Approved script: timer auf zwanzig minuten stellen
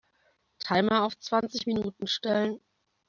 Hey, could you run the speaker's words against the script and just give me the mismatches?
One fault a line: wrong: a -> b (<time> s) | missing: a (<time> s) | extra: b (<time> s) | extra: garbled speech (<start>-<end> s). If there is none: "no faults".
no faults